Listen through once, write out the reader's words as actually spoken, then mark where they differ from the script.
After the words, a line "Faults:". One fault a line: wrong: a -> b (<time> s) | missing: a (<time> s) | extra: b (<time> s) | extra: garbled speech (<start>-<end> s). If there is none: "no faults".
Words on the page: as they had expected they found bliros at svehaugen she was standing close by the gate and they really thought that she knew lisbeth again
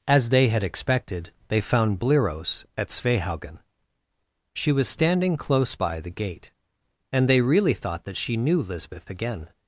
as they had expected they found bliros at svehaugen she was standing close by the gate and they really thought that she knew lisbeth again
Faults:
no faults